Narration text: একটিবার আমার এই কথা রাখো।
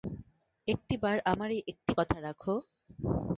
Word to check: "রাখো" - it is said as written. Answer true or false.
true